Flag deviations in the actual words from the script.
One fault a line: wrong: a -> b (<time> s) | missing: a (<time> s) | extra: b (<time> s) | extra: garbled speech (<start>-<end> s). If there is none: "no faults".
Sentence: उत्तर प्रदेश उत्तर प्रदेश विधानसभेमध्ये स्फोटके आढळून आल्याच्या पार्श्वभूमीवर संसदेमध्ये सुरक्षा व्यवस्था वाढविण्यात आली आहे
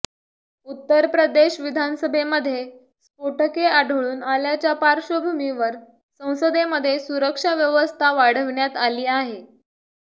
missing: उत्तर प्रदेश (1.6 s)